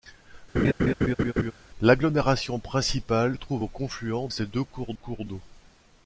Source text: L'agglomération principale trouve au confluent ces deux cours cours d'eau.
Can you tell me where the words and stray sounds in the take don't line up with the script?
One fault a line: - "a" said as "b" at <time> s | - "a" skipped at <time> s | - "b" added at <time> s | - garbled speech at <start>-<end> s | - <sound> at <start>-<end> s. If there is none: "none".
- laugh at 0.5-1.5 s